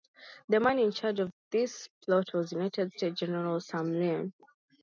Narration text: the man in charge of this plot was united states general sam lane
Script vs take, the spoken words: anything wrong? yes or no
no